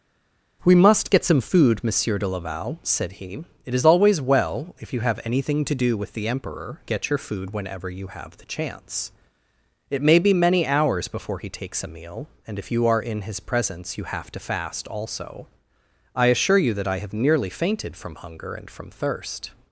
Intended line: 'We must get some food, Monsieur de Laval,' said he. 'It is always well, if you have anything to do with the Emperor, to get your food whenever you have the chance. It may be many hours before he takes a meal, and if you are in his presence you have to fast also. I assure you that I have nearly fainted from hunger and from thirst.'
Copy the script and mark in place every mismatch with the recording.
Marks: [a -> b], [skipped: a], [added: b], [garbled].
'We must get some food, Monsieur de Laval,' said he. 'It is always well, if you have anything to do with the Emperor, [skipped: to] get your food whenever you have the chance. It may be many hours before he takes a meal, and if you are in his presence you have to fast also. I assure you that I have nearly fainted from hunger and from thirst.'